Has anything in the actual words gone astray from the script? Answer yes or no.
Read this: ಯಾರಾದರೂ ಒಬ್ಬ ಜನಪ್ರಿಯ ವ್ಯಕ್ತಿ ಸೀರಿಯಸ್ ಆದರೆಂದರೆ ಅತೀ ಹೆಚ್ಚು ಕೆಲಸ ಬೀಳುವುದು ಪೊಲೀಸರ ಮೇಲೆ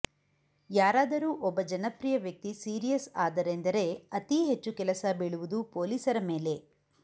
no